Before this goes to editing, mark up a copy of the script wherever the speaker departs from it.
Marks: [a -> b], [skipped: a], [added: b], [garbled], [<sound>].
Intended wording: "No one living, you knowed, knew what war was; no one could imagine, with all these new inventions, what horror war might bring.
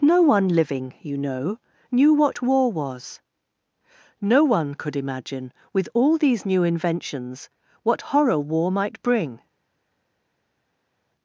"No one living, you [knowed, -> know] knew what war was; no one could imagine, with all these new inventions, what horror war might bring.